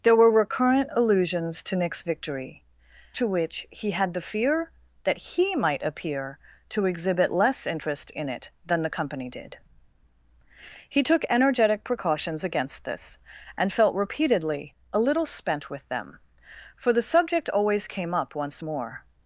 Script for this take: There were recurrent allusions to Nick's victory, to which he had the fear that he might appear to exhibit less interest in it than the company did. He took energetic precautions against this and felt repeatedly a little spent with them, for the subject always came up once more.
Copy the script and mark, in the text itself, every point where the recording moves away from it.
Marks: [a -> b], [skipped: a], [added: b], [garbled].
There were recurrent allusions to Nick's victory, to which he had the fear that he might appear to exhibit less interest in it than the company did. He took energetic precautions against this and felt repeatedly a little spent with them, for the subject always came up once more.